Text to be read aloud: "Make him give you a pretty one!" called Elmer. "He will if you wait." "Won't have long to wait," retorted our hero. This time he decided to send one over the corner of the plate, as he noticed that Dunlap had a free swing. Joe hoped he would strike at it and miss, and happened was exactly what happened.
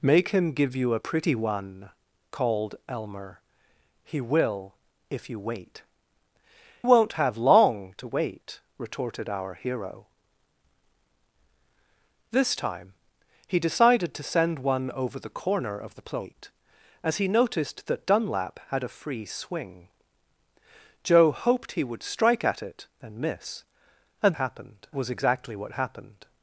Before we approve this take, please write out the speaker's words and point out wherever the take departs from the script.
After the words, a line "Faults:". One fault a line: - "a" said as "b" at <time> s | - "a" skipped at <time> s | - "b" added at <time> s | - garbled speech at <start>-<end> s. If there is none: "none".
"Make him give you a pretty one!" called Elmer. "He will if you wait." "Won't have long to wait," retorted our hero. This time he decided to send one over the corner of the plate, as he noticed that Dunlap had a free swing. Joe hoped he would strike at it and miss, and happened was exactly what happened.
Faults:
none